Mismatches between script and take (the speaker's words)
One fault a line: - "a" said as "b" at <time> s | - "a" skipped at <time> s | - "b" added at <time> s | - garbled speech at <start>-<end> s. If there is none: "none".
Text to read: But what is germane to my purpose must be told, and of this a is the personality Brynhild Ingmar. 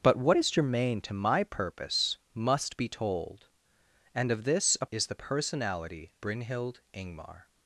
none